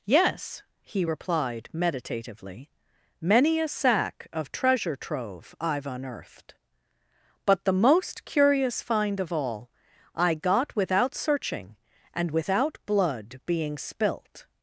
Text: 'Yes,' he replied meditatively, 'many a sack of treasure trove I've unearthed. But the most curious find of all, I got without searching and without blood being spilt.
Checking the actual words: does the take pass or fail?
pass